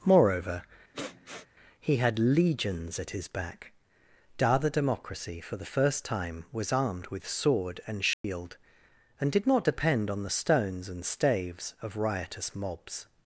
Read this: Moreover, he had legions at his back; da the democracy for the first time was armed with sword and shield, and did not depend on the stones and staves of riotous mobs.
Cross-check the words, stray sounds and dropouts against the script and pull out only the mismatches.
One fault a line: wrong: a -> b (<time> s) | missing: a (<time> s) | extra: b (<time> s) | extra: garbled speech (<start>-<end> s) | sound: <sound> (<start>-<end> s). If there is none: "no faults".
sound: sniff (0.9-1.5 s)
sound: dropout (8.1-8.2 s)